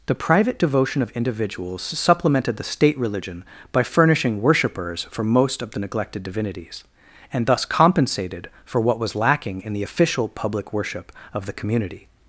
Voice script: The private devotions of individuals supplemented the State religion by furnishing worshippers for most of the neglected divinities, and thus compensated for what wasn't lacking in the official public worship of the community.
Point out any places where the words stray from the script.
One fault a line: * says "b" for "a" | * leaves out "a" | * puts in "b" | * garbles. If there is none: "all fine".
* says "devotion" for "devotions"
* says "was" for "wasn't"